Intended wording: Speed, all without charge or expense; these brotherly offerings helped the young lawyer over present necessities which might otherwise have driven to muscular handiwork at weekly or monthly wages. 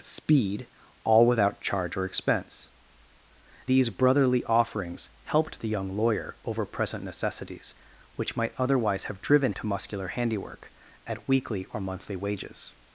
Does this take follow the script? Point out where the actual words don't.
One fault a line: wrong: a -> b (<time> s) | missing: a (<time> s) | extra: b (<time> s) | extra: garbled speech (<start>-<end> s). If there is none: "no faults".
no faults